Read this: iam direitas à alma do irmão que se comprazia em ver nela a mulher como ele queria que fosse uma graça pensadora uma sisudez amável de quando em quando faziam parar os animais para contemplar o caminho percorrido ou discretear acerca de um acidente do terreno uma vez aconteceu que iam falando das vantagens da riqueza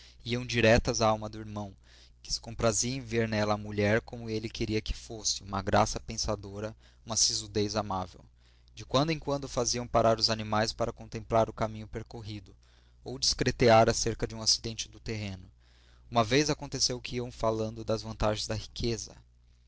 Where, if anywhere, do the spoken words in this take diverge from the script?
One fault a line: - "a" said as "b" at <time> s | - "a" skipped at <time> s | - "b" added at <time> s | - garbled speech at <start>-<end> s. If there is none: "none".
none